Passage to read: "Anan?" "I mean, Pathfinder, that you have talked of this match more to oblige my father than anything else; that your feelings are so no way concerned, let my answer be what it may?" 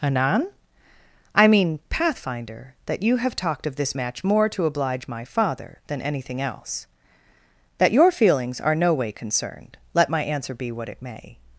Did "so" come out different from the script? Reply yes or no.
yes